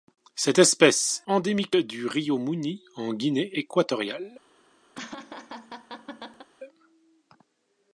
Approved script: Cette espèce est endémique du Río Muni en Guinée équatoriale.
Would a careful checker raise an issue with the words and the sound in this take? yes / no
yes